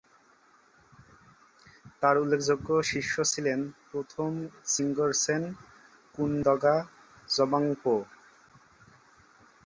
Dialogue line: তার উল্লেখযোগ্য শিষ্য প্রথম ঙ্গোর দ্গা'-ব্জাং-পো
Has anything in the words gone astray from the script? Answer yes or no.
yes